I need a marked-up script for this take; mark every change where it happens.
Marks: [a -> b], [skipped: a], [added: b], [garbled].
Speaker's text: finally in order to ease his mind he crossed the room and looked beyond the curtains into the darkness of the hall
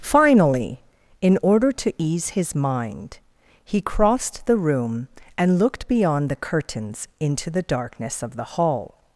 finally in order to ease his mind he crossed the room and looked beyond the curtains into the darkness of the hall